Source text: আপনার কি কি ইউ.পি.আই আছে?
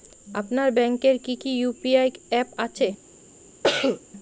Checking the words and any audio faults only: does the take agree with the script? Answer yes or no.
no